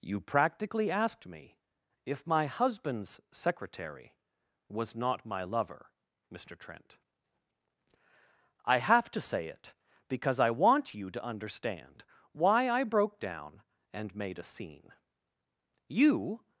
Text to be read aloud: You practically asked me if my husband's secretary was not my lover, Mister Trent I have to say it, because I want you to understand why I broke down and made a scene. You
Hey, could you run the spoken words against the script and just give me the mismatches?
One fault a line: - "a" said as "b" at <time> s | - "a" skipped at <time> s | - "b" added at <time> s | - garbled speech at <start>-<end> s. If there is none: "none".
none